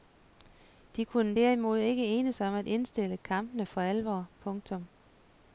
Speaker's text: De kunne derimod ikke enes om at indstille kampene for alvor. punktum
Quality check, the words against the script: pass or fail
pass